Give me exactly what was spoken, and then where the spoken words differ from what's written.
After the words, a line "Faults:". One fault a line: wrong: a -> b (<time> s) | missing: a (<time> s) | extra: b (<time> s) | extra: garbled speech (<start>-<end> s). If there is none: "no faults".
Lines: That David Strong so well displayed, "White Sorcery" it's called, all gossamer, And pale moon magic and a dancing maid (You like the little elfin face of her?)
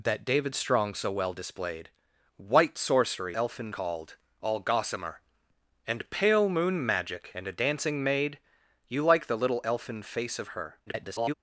That David Strong so well displayed, "White Sorcery" elfin called, all gossamer, And pale moon magic and a dancing maid (You like the little elfin face of her?) [garbled]
Faults:
wrong: it's -> elfin (3.3 s)
extra: garbled speech (10.9-11.3 s)